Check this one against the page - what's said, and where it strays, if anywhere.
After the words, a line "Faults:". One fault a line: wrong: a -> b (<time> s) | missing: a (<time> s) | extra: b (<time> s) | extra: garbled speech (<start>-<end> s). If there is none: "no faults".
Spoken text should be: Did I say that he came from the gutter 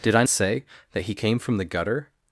Did I say that he came from the gutter
Faults:
no faults